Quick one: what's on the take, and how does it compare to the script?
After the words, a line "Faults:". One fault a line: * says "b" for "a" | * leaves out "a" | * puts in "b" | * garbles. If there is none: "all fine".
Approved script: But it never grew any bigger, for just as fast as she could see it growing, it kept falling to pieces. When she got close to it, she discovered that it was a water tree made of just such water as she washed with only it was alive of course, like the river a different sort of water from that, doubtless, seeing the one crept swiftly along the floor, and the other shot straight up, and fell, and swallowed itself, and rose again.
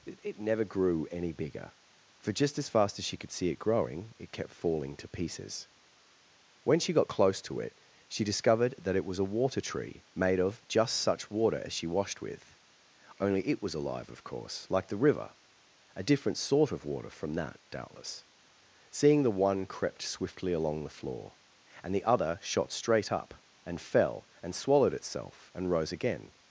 it never grew any bigger, for just as fast as she could see it growing, it kept falling to pieces. When she got close to it, she discovered that it was a water tree made of just such water as she washed with only it was alive of course, like the river a different sort of water from that, doubtless, seeing the one crept swiftly along the floor, and the other shot straight up, and fell, and swallowed itself, and rose again.
Faults:
* leaves out "But"